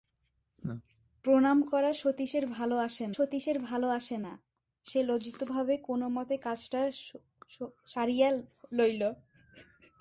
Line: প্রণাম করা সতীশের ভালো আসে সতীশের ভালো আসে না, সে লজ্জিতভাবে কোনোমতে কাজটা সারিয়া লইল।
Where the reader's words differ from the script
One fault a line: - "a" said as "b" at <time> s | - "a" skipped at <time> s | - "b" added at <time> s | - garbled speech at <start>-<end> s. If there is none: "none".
none